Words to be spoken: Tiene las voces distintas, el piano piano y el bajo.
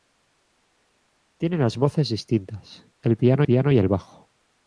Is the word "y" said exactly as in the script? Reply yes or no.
yes